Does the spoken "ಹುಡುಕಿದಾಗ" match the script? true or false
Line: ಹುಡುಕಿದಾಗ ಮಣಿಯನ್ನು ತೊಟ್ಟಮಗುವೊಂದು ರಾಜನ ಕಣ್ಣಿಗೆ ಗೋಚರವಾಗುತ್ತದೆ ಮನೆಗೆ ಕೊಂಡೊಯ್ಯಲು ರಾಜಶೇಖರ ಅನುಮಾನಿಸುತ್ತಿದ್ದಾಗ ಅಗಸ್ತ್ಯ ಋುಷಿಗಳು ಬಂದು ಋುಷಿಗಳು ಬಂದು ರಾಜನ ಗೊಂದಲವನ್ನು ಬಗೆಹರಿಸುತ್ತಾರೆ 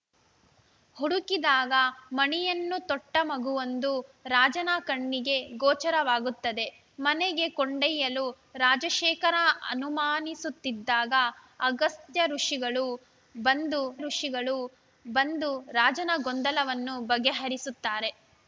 true